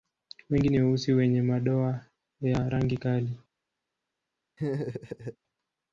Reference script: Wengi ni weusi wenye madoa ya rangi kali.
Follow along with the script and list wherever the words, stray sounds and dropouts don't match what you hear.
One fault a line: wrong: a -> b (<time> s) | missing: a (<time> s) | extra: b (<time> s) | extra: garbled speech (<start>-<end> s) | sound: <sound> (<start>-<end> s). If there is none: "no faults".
sound: laugh (4.6-5.4 s)